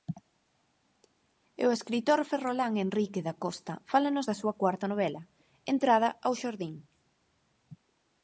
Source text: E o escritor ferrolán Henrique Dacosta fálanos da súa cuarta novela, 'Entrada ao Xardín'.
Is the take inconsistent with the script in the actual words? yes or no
no